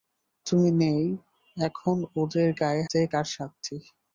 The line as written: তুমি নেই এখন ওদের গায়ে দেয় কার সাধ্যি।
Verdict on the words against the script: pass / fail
pass